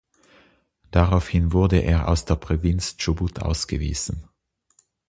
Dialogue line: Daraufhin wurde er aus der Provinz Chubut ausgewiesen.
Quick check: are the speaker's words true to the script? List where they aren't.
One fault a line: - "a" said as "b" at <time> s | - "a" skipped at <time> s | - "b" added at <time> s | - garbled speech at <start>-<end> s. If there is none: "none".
none